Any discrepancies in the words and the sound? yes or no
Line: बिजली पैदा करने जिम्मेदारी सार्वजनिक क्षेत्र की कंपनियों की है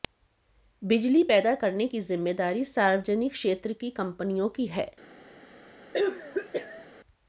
yes